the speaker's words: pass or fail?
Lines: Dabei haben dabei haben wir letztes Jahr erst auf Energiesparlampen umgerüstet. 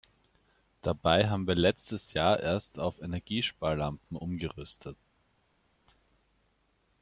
fail